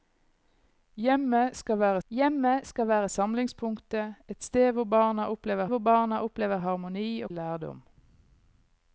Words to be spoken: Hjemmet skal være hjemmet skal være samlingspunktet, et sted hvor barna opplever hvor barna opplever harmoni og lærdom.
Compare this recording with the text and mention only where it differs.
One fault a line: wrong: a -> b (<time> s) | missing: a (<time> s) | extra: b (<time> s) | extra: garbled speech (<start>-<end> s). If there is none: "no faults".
no faults